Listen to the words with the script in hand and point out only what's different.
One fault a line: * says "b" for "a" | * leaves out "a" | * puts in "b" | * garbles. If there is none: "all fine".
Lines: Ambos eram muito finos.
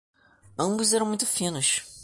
all fine